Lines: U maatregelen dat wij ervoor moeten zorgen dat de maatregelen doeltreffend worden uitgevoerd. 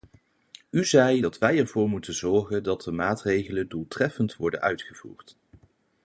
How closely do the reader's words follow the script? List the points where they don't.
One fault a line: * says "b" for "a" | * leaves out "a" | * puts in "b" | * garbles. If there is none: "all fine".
* says "zei" for "maatregelen"